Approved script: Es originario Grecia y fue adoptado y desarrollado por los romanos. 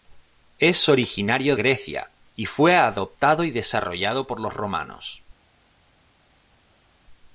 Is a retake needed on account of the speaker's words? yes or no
no